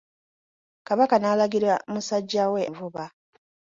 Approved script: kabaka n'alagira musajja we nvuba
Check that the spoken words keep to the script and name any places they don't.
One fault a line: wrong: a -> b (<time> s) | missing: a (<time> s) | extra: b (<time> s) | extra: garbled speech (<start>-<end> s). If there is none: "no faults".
no faults